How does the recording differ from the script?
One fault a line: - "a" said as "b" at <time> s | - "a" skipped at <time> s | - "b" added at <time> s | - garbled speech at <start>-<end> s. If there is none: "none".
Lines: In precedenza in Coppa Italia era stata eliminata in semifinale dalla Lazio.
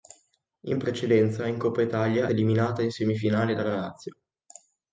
- "era stata" skipped at 2.3 s